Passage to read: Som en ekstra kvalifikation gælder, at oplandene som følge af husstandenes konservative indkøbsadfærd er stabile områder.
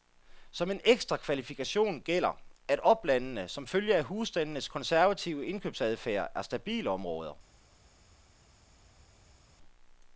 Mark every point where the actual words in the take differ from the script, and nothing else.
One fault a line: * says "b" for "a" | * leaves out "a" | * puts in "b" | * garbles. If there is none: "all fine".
all fine